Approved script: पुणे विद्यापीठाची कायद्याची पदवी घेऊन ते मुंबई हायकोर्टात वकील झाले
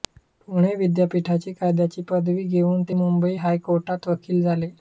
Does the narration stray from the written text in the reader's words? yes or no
no